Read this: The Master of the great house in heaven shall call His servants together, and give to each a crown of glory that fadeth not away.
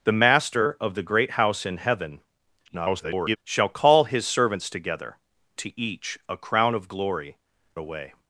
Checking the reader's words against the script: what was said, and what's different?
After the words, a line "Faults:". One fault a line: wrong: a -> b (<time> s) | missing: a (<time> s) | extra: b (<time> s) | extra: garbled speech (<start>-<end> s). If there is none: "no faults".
The Master of the great house in heaven [garbled] shall call His servants together, to each a crown of glory away.
Faults:
extra: garbled speech (2.7-3.4 s)
missing: and give (5.2 s)
missing: that fadeth not (7.4 s)